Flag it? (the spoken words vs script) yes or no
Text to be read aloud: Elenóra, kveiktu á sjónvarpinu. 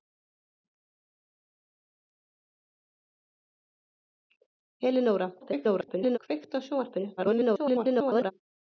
yes